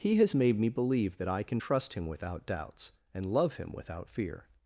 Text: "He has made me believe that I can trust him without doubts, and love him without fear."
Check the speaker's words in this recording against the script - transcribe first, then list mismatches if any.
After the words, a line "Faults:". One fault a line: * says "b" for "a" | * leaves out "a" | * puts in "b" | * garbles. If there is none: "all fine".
"He has made me believe that I can trust him without doubts, and love him without fear."
Faults:
all fine